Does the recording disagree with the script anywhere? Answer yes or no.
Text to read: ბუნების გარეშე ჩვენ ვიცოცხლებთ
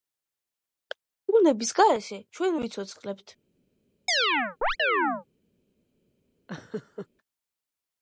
no